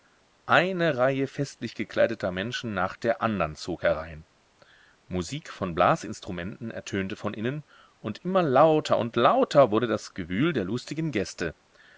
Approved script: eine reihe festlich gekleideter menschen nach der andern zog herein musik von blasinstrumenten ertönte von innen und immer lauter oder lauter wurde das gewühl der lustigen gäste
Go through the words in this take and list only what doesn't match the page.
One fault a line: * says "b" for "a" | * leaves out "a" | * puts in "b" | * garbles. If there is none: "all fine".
* says "und" for "oder"